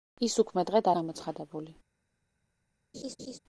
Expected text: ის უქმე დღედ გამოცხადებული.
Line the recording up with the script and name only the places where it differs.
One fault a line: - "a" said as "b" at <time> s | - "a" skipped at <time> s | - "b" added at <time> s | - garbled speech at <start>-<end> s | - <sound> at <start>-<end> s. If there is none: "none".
- laugh at 2.9-3.4 s